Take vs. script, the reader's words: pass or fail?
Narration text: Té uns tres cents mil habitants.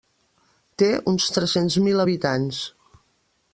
pass